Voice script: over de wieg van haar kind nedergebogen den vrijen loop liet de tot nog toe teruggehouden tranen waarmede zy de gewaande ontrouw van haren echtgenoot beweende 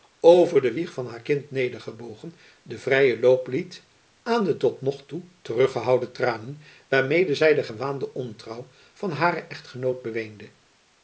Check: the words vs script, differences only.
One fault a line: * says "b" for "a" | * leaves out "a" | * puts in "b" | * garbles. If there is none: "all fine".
* puts in "aan"